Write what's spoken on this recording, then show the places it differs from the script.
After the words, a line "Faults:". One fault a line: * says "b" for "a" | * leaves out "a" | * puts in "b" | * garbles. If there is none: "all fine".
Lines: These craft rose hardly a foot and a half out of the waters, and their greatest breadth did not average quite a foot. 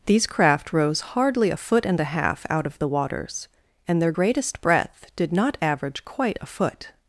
These craft rose hardly a foot and a half out of the waters, and their greatest breadth did not average quite a foot.
Faults:
all fine